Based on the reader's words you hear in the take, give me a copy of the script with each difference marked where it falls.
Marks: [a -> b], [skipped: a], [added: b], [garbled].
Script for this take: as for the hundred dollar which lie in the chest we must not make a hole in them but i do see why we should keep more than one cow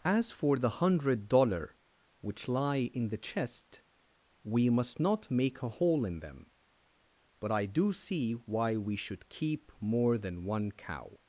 as for the hundred dollar which lie in the chest we must not make a hole in them but i do see why we should keep more than one cow